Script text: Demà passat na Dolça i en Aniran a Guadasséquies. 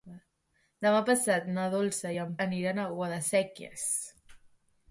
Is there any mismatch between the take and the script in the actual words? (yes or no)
no